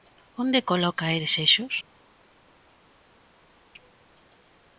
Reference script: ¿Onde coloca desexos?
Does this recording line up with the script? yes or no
yes